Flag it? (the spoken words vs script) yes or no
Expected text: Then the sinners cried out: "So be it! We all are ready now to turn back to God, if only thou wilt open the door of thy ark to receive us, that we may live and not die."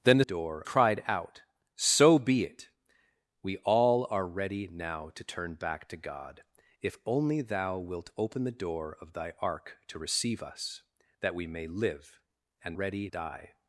yes